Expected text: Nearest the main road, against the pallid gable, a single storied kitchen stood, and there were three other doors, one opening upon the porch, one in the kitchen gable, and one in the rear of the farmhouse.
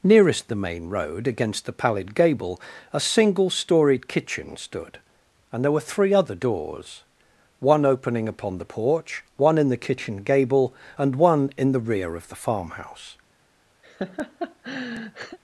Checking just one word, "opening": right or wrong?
right